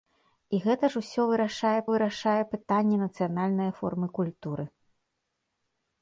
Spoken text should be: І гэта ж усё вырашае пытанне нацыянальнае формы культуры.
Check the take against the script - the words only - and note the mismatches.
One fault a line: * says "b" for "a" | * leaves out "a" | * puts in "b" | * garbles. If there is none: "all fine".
* puts in "вырашае"